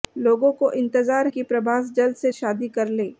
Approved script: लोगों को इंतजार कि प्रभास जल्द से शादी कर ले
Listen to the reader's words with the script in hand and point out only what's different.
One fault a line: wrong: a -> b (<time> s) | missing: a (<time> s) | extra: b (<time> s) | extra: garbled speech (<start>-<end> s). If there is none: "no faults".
no faults